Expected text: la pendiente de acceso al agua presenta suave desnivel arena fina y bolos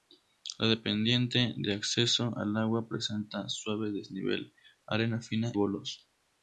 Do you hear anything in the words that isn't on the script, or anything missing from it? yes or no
yes